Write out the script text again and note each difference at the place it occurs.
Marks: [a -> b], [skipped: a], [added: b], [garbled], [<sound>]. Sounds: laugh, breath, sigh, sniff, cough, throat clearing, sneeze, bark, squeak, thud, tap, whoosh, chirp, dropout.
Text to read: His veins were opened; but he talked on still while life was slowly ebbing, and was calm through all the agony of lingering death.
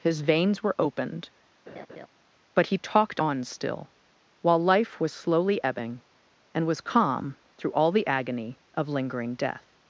His veins were opened; [laugh] but he talked on still while life was slowly ebbing, and was calm through all the agony of lingering death.